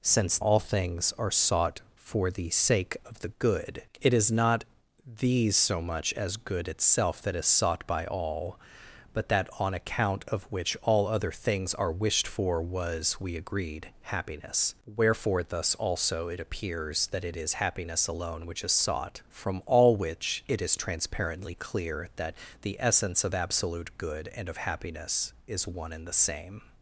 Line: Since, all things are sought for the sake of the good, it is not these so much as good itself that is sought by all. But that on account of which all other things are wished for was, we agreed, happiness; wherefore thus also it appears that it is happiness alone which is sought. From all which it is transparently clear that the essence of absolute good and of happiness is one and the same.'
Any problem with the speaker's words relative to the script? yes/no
no